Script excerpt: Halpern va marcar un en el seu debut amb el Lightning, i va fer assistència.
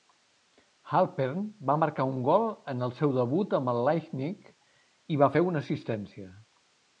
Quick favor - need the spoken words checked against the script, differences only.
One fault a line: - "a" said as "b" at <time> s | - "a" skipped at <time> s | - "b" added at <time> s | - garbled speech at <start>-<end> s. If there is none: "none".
- "gol" added at 2.3 s
- "una" added at 5.5 s